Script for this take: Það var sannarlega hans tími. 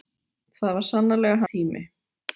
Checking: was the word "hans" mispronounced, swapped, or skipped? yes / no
yes